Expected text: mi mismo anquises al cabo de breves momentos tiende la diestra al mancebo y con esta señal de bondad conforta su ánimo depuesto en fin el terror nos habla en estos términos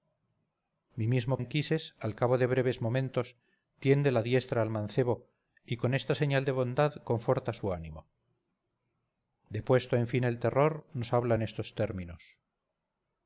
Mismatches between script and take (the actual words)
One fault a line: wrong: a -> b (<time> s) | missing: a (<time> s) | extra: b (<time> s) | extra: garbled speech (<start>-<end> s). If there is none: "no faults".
no faults